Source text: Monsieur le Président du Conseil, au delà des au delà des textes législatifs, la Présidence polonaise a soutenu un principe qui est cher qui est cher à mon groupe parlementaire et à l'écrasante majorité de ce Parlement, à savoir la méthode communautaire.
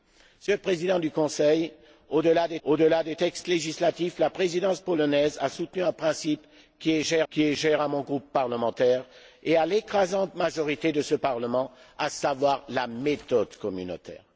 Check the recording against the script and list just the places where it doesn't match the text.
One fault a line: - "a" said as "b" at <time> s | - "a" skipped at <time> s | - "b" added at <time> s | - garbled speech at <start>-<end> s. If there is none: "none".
none